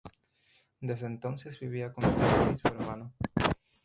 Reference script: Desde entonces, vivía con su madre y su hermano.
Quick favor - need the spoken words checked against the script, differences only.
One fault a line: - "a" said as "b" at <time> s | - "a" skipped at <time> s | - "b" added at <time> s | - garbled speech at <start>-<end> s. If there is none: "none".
none